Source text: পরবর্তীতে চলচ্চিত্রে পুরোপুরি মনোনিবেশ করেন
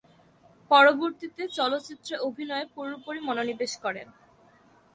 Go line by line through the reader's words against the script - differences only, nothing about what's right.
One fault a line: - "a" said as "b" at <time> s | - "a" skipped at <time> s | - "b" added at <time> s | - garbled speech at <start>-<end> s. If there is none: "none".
- "অভিনয়ে" added at 2.3 s